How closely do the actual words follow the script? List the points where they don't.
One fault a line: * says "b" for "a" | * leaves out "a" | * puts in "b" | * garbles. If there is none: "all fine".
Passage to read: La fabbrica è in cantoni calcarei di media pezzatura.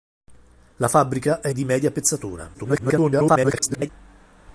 * leaves out "in cantoni calcarei"
* garbles